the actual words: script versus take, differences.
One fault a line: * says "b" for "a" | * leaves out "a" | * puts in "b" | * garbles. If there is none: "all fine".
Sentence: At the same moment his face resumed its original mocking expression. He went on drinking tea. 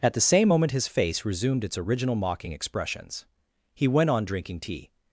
* says "expressions" for "expression"